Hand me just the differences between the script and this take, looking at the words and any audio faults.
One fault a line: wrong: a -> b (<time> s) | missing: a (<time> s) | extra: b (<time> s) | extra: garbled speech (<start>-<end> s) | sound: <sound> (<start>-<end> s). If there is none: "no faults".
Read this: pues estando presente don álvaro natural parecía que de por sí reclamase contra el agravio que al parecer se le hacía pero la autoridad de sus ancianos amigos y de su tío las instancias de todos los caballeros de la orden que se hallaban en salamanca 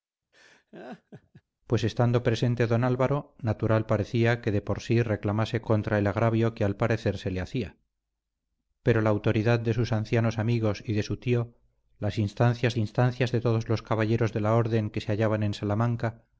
sound: laugh (0.3-1.4 s)
extra: instancias (12.8 s)